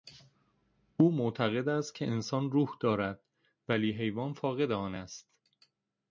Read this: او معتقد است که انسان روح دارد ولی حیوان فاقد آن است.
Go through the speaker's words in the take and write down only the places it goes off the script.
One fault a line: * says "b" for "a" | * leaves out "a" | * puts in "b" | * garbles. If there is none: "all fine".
all fine